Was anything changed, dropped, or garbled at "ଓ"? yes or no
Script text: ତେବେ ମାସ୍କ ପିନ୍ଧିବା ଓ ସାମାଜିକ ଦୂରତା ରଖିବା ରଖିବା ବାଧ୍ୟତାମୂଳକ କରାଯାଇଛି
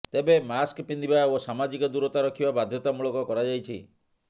no